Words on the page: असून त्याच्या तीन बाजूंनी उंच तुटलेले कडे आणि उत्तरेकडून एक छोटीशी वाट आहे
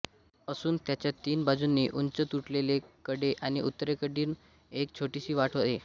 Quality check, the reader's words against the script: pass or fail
pass